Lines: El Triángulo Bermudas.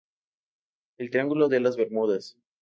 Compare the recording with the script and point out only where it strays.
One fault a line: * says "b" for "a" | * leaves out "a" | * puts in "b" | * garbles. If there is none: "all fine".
* puts in "de las"